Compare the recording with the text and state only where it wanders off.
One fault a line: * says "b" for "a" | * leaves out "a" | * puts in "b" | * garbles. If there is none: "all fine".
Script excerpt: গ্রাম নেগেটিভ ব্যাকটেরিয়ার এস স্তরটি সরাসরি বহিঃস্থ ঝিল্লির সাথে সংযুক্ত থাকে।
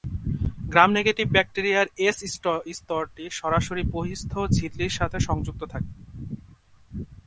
all fine